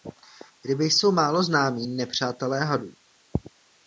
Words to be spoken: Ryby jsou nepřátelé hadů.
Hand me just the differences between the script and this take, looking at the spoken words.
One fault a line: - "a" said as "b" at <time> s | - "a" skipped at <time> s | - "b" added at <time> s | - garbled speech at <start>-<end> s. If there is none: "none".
- "málo známí" added at 1.1 s